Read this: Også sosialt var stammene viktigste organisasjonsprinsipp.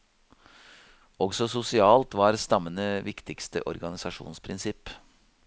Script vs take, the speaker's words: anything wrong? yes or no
no